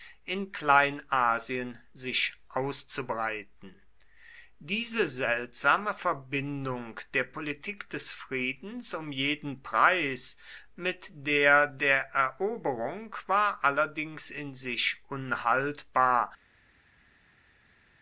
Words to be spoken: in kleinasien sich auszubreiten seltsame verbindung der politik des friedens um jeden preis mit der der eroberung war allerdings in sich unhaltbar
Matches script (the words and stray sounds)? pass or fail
fail